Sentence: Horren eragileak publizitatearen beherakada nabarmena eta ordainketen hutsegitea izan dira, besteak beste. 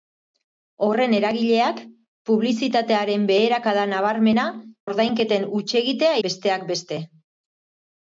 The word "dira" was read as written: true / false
false